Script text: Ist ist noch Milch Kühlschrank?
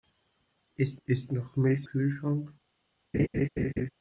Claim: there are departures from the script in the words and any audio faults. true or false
true